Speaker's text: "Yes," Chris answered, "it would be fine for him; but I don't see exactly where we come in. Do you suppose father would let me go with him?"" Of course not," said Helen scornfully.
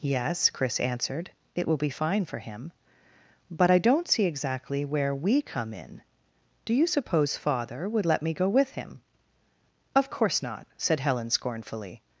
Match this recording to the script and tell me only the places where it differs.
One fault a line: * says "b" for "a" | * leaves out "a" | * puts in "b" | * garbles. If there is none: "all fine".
* says "will" for "would"